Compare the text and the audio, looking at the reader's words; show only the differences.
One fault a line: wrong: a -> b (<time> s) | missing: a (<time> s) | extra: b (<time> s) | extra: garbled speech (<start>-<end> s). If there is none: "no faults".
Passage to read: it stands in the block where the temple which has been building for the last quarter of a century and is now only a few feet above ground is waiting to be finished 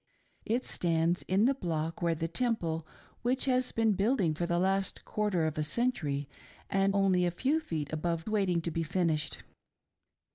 missing: is now (7.0 s)
missing: ground is (8.3 s)